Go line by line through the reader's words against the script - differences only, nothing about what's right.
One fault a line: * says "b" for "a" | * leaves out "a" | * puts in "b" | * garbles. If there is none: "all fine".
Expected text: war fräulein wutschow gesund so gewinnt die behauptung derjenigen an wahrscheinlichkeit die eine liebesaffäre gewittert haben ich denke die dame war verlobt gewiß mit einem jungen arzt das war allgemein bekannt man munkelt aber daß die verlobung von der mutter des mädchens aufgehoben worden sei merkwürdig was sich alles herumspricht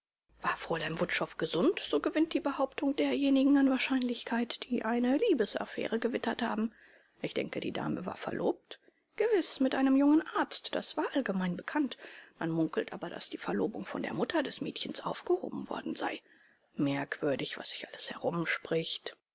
all fine